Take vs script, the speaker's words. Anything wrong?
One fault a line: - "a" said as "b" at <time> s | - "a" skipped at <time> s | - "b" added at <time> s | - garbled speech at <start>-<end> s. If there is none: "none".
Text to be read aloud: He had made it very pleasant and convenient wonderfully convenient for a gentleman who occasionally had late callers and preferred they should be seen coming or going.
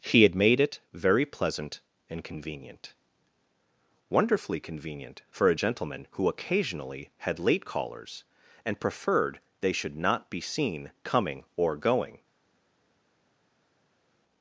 - "not" added at 10.0 s